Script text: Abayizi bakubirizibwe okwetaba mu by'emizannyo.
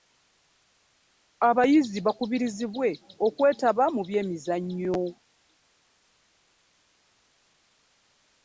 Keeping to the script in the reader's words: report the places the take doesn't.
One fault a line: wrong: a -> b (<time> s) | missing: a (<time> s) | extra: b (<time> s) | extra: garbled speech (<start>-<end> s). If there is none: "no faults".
no faults